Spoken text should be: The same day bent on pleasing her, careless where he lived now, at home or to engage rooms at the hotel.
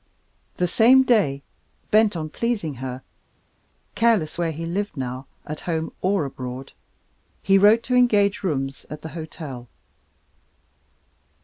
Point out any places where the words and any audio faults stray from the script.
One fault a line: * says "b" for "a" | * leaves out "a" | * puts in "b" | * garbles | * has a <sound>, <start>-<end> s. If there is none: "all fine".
* puts in "abroad he wrote"